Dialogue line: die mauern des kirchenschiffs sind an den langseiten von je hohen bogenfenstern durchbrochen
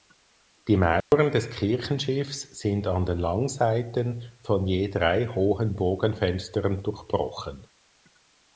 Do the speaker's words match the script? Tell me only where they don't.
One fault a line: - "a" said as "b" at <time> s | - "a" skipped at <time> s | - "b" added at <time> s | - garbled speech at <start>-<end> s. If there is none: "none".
- "drei" added at 4.9 s